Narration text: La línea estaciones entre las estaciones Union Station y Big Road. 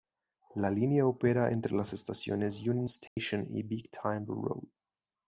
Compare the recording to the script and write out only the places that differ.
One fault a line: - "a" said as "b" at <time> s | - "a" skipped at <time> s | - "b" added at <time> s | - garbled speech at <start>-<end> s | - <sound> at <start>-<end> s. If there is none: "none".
- "estaciones" said as "opera" at 1.1 s
- dropout at 3.1-3.2 s
- "Timber" added at 3.9 s